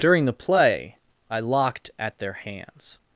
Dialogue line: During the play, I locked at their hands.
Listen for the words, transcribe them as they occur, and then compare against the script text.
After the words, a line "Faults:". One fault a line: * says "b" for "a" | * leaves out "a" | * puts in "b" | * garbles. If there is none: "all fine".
During the play, I locked at their hands.
Faults:
all fine